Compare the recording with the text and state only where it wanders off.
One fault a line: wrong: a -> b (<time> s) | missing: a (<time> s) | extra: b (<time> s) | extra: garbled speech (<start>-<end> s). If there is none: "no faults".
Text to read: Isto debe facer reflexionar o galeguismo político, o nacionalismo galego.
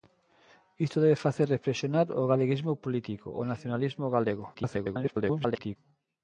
extra: garbled speech (4.5-5.8 s)